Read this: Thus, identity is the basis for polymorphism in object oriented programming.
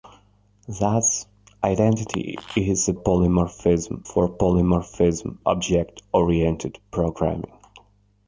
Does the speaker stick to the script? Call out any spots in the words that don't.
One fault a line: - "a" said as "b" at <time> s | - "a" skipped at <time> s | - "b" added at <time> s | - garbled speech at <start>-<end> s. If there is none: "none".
- "basis" said as "polymorphism" at 2.9 s
- "in" skipped at 5.4 s